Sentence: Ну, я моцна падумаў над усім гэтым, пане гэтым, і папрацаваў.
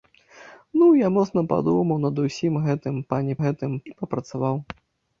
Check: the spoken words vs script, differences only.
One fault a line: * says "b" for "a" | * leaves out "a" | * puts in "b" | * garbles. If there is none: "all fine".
all fine